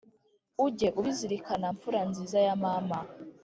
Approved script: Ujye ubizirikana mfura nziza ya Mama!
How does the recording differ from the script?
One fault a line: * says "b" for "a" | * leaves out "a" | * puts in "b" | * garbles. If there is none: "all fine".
all fine